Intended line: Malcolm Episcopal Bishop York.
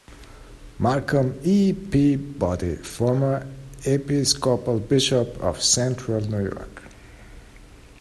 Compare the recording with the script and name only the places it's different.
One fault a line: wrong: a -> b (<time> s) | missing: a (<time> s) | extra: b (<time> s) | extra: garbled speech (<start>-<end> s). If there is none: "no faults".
extra: E Peabody former (1.4 s)
extra: of Central New (5.4 s)